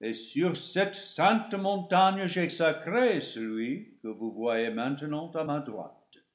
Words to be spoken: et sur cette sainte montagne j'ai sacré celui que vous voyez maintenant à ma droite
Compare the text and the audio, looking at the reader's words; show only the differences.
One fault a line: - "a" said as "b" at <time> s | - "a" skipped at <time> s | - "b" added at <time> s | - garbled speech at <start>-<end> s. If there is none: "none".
none